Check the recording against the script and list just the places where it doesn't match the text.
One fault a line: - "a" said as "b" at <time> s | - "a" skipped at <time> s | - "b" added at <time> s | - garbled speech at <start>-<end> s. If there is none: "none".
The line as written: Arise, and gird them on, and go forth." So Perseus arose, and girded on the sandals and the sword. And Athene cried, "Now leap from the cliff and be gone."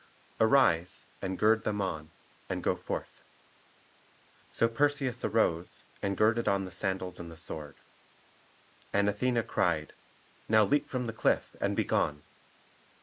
none